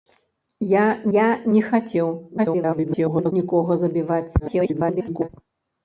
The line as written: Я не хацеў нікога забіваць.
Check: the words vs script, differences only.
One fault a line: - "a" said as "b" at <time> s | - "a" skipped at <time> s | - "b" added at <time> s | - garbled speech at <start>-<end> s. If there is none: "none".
- "я" added at 1.1 s
- garbled speech at 2.4-3.3 s
- garbled speech at 4.4-5.3 s